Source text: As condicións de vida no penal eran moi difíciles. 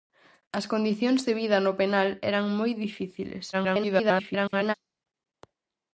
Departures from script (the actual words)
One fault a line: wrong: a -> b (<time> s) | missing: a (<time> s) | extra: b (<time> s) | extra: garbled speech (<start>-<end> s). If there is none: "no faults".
extra: garbled speech (3.5-4.7 s)